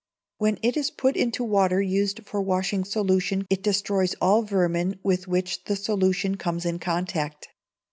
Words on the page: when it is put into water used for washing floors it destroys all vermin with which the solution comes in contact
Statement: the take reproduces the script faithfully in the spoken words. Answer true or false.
false